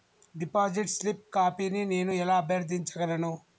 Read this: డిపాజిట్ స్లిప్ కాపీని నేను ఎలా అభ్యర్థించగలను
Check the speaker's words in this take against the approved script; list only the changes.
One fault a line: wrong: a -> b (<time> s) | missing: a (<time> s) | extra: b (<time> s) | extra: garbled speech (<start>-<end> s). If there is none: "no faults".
no faults